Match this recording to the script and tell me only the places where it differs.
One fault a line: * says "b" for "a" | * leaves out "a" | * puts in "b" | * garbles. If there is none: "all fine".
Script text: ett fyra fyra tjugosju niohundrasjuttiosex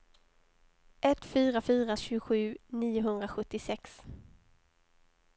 all fine